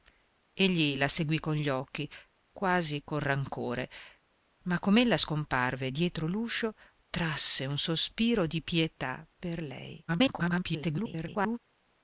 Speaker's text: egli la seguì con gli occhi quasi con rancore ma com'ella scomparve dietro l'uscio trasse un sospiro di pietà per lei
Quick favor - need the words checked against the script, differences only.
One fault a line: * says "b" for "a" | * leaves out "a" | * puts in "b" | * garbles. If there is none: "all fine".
* garbles